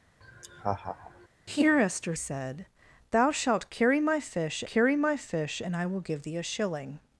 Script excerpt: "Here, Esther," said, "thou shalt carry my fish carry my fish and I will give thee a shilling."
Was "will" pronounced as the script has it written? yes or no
yes